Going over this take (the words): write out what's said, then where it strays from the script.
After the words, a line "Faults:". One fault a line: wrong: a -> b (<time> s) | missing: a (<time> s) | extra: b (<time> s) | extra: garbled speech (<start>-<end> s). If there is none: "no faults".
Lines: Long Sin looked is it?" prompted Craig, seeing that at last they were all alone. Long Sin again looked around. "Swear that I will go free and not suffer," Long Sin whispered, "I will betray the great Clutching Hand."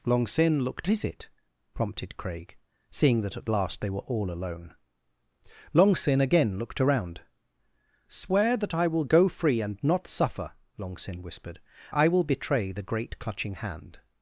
Long Sin looked is it?" prompted Craig, seeing that at last they were all alone. Long Sin again looked around. "Swear that I will go free and not suffer," Long Sin whispered, "I will betray the great Clutching Hand."
Faults:
no faults